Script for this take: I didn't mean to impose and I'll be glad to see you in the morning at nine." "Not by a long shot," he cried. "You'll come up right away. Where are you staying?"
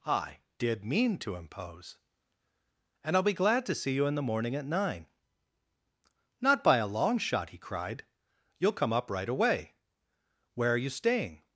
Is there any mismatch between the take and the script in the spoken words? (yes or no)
yes